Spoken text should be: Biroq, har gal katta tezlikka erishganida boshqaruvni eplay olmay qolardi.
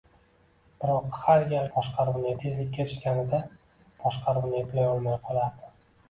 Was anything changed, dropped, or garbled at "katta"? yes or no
yes